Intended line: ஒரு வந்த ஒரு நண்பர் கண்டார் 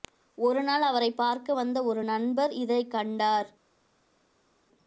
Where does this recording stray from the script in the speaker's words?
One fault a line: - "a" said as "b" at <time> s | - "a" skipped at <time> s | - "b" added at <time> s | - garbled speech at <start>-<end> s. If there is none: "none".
- "நாள் அவரைப் பார்க்க" added at 0.6 s
- "இதைக்" added at 2.6 s